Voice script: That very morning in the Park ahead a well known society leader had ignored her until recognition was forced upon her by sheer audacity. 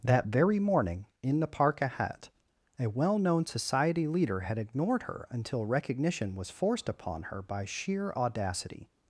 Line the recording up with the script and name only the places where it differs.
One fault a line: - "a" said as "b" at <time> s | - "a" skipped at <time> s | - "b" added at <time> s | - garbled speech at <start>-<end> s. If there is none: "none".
none